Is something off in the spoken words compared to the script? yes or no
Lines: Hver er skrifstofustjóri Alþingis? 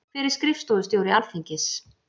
no